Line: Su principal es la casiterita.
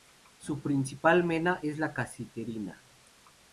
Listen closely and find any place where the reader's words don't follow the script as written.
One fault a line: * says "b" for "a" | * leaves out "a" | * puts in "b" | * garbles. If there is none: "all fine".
* puts in "mena"